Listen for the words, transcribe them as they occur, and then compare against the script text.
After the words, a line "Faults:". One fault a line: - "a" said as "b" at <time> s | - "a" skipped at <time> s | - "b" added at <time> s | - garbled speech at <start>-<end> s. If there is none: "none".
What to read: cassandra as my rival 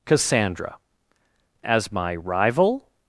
cassandra as my rival
Faults:
none